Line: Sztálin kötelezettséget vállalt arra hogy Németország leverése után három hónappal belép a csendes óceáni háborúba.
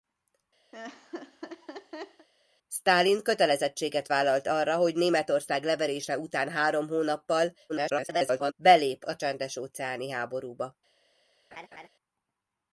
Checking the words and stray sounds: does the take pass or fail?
fail